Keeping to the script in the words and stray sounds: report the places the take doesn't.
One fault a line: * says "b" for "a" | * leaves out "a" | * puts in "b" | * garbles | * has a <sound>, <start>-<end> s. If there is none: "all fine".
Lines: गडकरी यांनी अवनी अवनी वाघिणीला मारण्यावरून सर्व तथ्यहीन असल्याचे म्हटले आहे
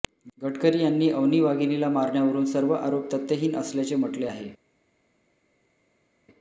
* leaves out "अवनी"
* puts in "आरोप"